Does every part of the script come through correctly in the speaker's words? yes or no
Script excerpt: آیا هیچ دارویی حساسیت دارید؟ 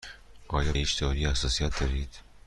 yes